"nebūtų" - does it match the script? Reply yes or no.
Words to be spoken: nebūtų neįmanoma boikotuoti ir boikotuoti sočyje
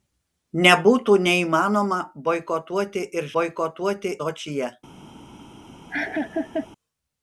yes